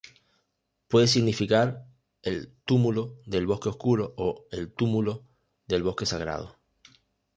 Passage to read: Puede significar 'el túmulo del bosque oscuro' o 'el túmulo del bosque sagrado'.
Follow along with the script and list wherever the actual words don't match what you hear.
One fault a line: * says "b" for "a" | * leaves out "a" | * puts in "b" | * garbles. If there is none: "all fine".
all fine